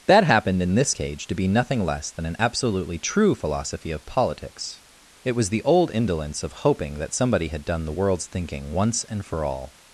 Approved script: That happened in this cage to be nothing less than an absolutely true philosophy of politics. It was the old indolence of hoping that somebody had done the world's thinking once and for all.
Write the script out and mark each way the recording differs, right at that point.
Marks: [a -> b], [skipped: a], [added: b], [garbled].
That happened in this cage to be nothing less than an absolutely true philosophy of politics. It was the old indolence of hoping that somebody had done the world's thinking once and for all.